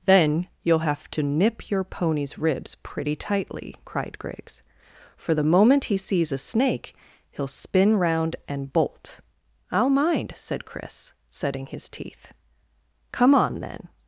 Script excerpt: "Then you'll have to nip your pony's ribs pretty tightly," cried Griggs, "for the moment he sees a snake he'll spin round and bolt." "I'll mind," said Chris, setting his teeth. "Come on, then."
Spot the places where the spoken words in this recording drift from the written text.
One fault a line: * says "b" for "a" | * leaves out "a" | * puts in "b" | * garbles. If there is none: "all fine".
all fine